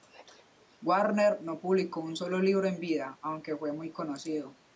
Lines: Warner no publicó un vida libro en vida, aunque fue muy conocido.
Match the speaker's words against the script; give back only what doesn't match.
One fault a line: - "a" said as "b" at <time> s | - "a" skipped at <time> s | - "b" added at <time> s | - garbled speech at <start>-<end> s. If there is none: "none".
- "vida" said as "solo" at 2.2 s